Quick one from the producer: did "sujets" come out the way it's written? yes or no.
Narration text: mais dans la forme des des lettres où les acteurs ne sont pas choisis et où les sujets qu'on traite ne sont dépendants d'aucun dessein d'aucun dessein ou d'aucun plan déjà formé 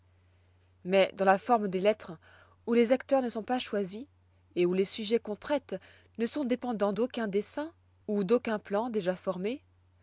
yes